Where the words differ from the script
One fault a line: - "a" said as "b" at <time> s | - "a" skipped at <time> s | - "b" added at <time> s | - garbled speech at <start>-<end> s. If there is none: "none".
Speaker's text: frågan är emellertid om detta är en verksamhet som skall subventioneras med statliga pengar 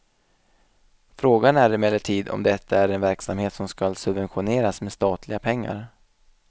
none